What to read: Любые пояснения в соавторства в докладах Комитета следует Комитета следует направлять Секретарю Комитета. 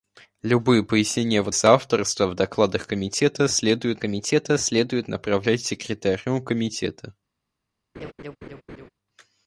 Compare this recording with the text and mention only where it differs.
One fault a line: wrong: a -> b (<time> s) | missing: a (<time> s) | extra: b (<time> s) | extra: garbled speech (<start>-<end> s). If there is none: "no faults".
no faults